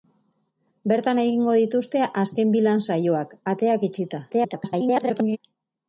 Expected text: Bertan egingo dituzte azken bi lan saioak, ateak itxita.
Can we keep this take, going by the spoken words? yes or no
no